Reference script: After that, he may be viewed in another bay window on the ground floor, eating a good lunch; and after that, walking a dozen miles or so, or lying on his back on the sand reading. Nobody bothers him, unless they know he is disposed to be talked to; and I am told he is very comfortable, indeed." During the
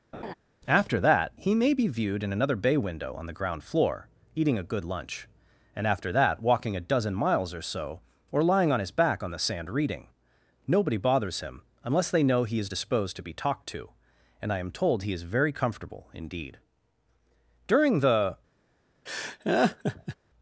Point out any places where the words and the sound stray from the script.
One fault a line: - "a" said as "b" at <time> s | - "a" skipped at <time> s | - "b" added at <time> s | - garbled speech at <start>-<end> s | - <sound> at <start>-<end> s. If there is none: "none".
- laugh at 0.1-0.3 s
- laugh at 19.1-20.2 s